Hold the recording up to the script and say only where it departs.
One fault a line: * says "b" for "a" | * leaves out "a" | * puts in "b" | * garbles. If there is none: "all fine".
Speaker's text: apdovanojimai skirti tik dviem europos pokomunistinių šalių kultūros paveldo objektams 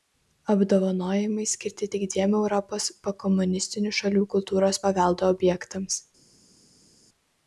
all fine